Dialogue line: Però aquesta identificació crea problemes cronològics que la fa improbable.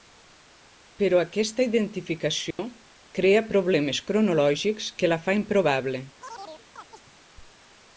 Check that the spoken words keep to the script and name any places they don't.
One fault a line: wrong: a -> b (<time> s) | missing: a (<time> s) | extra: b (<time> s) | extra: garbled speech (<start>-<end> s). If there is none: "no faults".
no faults